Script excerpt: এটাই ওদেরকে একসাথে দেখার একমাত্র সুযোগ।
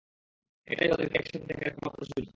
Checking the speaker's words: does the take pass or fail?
pass